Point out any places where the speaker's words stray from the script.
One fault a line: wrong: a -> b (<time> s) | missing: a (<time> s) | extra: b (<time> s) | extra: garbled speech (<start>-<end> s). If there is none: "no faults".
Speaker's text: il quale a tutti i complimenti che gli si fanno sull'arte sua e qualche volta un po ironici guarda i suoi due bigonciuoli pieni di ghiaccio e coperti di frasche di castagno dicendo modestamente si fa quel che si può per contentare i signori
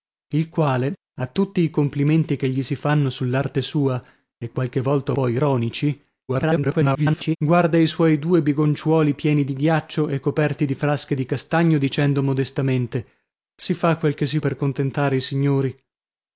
missing: un (5.1 s)
extra: garbled speech (6.3-7.4 s)
missing: può (14.4 s)